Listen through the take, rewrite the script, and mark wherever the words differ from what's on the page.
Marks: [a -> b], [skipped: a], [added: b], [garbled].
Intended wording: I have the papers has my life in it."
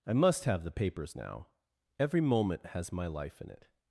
I [added: must] have the papers [added: now Every moment] has my life in it."